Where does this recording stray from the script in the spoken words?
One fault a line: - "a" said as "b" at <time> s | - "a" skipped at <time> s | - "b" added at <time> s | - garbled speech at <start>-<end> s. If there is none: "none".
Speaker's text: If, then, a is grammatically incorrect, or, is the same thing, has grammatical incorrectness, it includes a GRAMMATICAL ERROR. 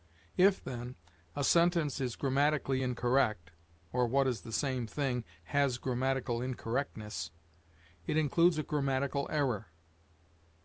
- "sentence" added at 1.4 s
- "what" added at 4.1 s